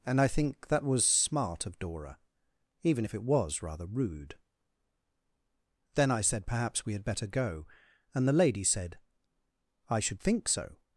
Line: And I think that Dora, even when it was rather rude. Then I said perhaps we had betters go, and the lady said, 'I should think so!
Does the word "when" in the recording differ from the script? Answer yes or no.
yes